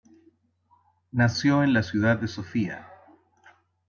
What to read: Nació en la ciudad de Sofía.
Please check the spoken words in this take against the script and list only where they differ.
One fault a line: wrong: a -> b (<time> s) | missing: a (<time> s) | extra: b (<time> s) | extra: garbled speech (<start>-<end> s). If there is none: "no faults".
no faults